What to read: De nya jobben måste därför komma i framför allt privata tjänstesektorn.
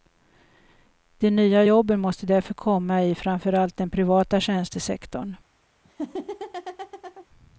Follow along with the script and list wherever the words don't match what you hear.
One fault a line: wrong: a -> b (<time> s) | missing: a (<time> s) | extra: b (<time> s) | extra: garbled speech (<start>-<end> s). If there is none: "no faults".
extra: den (3.8 s)